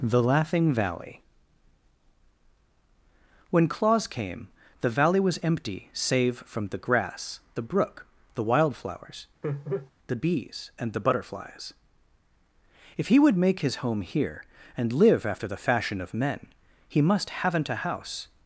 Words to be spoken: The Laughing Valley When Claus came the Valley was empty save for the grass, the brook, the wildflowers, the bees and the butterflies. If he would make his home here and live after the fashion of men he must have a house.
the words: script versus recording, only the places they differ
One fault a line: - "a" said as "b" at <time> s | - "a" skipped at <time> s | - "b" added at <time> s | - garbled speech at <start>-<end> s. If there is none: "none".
- "for" said as "from" at 6.4 s
- "have" said as "haven't" at 17.3 s